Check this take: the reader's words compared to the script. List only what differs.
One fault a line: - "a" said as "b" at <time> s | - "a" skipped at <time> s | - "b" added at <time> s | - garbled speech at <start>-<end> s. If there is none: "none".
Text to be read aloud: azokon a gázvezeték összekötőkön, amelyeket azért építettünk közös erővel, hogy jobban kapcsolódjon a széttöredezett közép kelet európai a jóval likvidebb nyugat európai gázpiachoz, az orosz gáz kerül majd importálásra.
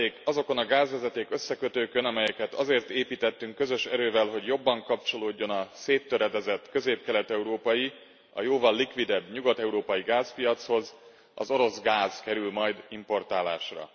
none